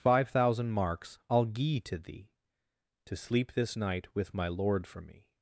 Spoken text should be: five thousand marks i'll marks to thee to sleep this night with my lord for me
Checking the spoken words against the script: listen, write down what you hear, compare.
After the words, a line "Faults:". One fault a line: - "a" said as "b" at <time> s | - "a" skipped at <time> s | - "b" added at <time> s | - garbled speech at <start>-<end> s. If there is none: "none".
five thousand marks i'll gie to thee to sleep this night with my lord for me
Faults:
- "marks" said as "gie" at 1.4 s